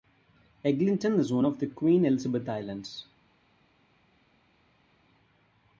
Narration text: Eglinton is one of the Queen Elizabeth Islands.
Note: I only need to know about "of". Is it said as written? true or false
true